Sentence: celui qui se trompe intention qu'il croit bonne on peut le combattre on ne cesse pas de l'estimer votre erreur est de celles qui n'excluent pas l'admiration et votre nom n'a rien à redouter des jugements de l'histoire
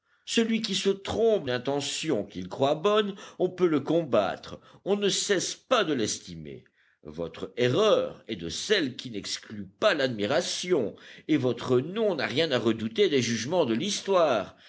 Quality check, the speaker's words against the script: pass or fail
pass